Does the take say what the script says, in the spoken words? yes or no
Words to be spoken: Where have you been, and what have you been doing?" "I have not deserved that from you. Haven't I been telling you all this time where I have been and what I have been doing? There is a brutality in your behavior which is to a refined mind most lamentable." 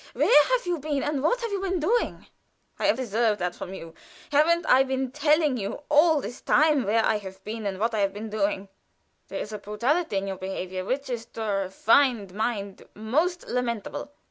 no